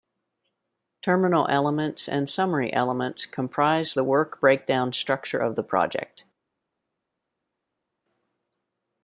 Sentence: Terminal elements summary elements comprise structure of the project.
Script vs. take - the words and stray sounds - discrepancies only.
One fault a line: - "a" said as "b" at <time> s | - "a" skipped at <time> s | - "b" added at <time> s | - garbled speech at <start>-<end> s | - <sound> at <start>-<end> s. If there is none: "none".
- "and" added at 2.1 s
- "the work breakdown" added at 3.9 s